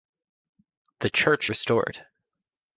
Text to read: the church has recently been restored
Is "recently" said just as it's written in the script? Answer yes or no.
no